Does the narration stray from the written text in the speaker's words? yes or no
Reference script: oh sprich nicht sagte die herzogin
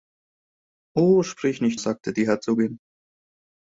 no